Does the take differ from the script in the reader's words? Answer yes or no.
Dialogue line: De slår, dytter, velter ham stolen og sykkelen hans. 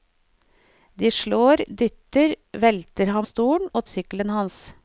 no